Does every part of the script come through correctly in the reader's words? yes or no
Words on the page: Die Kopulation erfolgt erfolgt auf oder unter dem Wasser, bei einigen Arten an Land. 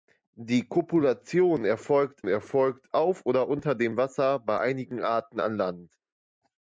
yes